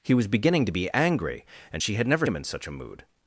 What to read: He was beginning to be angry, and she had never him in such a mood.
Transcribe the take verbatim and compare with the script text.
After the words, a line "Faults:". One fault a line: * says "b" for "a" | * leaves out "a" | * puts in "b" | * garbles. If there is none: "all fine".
He was beginning to be angry, and she had never him in such a mood.
Faults:
all fine